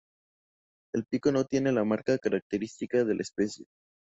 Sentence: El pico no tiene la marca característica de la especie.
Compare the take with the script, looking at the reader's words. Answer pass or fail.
pass